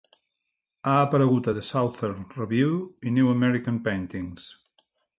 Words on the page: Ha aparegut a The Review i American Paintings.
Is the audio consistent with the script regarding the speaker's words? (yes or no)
no